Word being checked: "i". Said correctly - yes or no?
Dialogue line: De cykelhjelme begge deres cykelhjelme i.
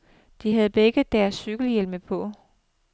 no